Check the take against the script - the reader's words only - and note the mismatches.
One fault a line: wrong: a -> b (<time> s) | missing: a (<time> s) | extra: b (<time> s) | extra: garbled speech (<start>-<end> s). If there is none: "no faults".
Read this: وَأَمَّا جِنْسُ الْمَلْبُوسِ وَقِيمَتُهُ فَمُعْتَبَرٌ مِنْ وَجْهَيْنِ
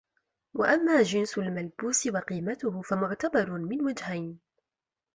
no faults